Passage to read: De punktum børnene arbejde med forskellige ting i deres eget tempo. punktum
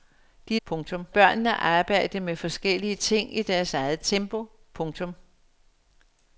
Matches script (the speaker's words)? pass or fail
pass